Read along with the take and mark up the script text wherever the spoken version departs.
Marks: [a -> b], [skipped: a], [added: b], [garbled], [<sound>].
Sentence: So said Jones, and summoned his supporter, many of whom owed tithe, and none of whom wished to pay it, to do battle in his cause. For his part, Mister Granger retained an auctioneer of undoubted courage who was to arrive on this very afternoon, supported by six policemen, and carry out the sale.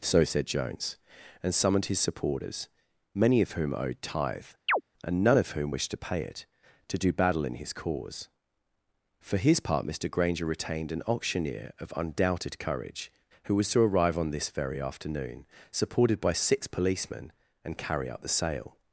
So said Jones, and summoned his [supporter, -> supporters] many of whom owed tithe, [chirp] and none of whom wished to pay it, to do battle in his cause. For his part, Mister Granger retained an auctioneer of undoubted courage who was to arrive on this very afternoon, supported by six policemen, and carry out the sale.